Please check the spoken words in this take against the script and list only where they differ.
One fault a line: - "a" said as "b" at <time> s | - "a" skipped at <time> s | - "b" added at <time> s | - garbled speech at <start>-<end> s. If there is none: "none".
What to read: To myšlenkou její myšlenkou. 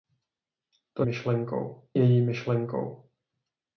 none